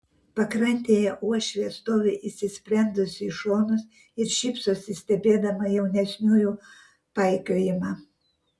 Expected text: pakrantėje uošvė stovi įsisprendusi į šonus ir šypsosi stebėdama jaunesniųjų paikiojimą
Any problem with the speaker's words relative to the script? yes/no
no